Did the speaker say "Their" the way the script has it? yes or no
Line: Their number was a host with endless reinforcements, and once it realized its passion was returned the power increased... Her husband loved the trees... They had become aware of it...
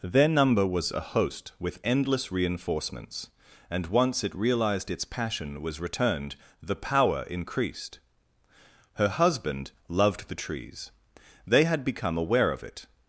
yes